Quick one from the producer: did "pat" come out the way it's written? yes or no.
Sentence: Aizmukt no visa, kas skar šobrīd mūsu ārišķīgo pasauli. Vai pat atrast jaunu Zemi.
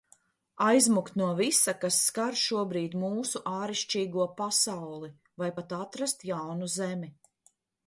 yes